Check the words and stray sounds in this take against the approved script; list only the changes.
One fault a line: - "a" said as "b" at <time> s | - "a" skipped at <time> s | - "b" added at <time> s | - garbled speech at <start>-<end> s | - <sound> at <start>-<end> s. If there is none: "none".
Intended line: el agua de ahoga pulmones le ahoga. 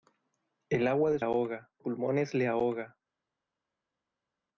none